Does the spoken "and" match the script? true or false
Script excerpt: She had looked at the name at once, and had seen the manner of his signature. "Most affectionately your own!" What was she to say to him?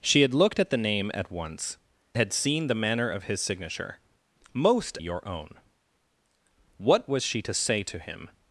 false